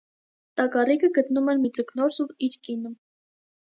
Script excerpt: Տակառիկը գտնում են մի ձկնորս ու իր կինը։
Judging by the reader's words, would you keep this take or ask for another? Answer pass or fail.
pass